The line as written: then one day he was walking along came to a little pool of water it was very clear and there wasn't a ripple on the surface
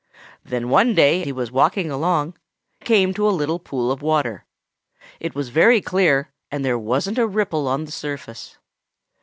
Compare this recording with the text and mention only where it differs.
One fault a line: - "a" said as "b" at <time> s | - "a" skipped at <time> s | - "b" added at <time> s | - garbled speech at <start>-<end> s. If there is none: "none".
none